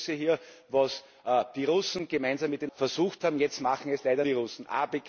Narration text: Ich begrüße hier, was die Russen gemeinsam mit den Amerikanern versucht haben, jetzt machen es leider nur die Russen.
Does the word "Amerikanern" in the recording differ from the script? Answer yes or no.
yes